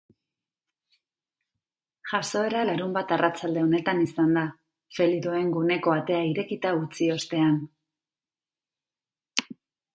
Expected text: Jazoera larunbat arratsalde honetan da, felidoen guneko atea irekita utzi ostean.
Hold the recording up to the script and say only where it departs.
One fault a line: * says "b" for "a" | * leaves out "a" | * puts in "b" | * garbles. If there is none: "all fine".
* puts in "izan"